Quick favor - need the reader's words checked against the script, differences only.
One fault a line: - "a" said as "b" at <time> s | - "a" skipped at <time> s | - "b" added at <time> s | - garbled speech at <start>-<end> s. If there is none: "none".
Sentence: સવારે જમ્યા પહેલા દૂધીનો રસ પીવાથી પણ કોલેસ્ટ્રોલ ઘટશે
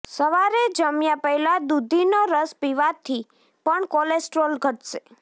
none